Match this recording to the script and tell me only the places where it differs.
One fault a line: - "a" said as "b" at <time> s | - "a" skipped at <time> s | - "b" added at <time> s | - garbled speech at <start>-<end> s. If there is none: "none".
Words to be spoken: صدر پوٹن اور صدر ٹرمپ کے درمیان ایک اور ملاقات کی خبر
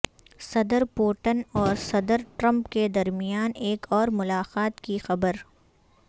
none